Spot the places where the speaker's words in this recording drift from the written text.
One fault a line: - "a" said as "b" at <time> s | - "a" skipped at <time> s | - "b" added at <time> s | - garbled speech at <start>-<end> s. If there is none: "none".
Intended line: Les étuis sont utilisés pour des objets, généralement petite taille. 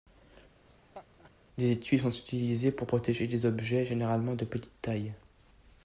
- "protéger" added at 2.8 s
- "de" added at 4.3 s